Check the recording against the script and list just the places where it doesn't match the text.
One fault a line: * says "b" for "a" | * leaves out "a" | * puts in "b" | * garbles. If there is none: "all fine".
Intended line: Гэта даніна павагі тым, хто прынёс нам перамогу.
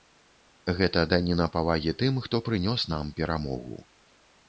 all fine